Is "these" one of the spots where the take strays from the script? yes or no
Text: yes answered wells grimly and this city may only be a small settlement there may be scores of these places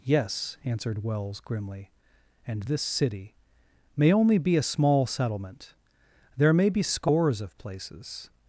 yes